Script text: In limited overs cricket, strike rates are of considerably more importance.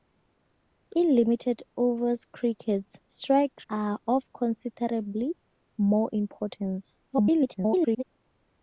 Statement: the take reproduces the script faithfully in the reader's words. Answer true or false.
false